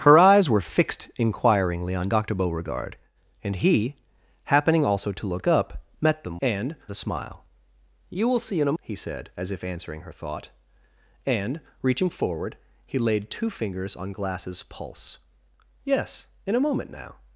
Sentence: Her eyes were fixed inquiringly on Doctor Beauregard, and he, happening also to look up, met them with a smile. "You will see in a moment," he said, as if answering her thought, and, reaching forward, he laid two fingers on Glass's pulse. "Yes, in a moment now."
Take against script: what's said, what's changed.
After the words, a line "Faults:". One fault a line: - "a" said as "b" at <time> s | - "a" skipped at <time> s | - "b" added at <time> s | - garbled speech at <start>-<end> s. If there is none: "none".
Her eyes were fixed inquiringly on Doctor Beauregard, and he, happening also to look up, met them and a smile. "You will see in a," he said, as if answering her thought, and, reaching forward, he laid two fingers on Glass's pulse. "Yes, in a moment now."
Faults:
- "with" said as "and" at 6.4 s
- "moment" skipped at 8.8 s